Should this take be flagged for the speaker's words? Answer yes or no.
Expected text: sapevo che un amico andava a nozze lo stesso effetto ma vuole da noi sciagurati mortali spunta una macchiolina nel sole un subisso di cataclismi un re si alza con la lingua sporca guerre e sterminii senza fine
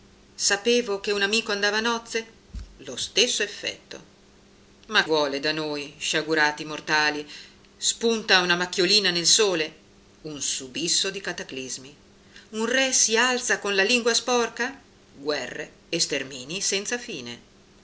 no